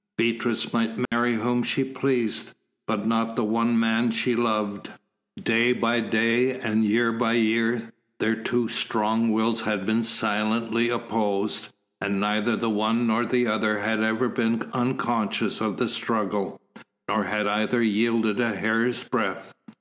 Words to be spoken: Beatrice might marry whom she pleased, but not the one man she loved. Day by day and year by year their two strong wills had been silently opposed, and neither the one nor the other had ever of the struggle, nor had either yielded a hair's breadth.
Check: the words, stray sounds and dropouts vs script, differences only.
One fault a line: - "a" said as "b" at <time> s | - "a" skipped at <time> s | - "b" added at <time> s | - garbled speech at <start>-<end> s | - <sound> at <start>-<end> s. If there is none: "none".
- dropout at 1.1-1.1 s
- "been unconscious" added at 14.3 s